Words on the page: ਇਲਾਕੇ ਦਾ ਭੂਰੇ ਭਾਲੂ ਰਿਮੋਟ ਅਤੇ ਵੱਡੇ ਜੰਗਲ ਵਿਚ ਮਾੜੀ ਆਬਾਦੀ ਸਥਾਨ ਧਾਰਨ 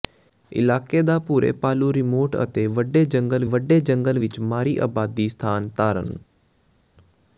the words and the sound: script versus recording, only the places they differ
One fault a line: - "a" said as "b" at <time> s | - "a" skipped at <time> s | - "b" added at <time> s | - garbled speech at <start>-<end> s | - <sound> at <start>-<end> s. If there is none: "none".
- "ਵੱਡੇ ਜੰਗਲ" added at 3.5 s